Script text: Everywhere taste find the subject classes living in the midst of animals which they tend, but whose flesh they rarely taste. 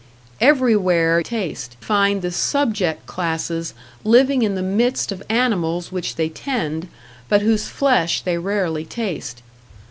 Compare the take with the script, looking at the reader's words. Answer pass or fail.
pass